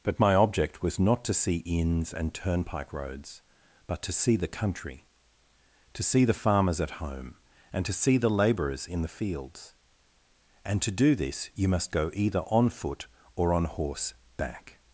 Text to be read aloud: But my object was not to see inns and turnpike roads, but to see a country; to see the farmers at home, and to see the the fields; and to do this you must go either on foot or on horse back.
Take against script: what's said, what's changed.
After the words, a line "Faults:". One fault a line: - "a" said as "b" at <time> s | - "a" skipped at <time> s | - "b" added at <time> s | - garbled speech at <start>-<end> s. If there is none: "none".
But my object was not to see inns and turnpike roads, but to see the country; to see the farmers at home, and to see the labourers in the fields; and to do this you must go either on foot or on horse back.
Faults:
- "a" said as "the" at 4.4 s
- "labourers in" added at 8.3 s